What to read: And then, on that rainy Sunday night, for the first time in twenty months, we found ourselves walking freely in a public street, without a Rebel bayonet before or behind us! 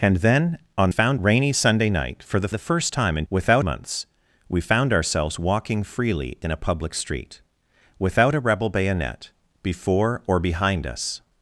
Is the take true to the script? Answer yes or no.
no